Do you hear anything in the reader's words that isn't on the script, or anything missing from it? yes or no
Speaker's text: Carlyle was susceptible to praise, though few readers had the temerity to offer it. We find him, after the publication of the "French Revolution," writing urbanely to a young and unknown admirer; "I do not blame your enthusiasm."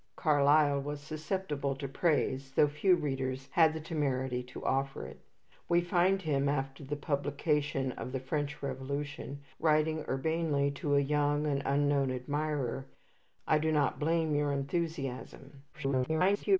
yes